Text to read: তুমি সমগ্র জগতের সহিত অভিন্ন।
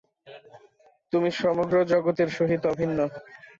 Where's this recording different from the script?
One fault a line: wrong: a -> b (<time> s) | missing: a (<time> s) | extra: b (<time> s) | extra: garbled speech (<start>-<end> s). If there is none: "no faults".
no faults